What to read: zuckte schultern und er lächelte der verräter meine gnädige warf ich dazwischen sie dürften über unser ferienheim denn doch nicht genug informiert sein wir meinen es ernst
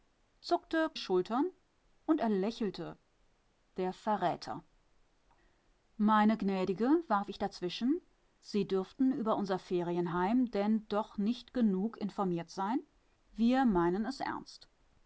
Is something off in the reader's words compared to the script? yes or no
no